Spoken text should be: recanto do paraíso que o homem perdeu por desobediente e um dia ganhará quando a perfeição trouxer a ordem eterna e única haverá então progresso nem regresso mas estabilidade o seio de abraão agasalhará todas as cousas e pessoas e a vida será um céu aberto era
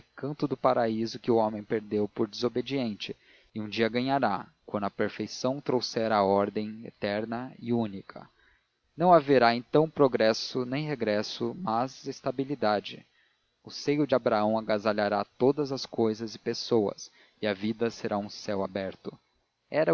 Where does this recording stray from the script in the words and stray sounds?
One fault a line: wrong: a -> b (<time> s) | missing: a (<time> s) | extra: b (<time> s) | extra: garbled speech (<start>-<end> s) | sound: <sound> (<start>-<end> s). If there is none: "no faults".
extra: não (9.0 s)